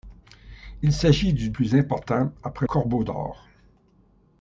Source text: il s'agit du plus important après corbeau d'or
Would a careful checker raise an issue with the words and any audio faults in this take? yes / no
no